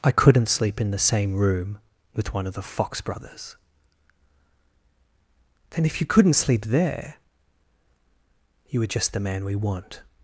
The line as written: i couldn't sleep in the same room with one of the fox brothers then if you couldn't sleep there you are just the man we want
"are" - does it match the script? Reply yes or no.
no